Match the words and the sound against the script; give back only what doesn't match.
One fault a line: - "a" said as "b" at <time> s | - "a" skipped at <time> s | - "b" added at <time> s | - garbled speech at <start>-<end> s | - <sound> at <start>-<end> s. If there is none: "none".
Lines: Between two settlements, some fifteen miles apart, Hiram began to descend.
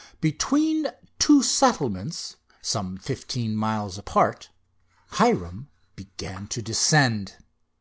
none